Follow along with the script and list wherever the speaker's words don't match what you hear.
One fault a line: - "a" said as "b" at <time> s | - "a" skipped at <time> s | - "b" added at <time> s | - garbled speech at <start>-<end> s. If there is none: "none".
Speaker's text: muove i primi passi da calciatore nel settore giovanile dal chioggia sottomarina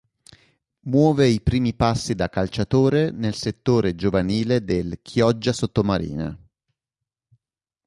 - "dal" said as "del" at 4.6 s